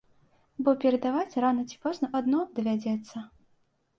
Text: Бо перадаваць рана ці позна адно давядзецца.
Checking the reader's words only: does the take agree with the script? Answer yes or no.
yes